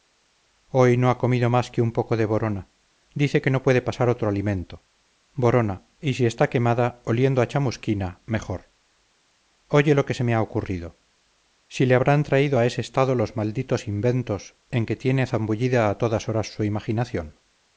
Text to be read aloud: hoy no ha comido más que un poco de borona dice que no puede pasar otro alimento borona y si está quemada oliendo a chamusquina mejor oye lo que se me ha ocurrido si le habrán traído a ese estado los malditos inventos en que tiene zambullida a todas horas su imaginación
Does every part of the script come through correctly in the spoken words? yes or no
yes